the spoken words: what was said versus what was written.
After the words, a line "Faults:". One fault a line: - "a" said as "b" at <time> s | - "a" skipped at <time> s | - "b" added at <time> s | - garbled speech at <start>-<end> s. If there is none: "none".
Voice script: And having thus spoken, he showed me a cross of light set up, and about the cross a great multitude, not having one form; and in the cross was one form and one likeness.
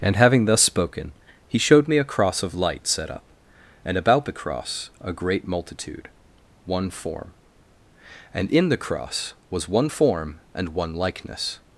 And having thus spoken, he showed me a cross of light set up, and about the cross a great multitude, one form; and in the cross was one form and one likeness.
Faults:
- "not having" skipped at 6.1 s